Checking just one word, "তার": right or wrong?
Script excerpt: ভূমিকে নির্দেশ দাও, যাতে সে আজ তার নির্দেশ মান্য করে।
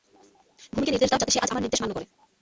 wrong